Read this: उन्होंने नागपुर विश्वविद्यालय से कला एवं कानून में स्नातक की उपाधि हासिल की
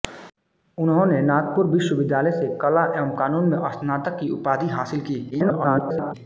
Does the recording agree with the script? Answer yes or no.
no